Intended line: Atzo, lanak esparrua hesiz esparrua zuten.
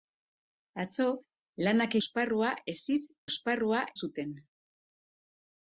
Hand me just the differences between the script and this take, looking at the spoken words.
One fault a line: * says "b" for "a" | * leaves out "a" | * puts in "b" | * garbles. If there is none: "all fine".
all fine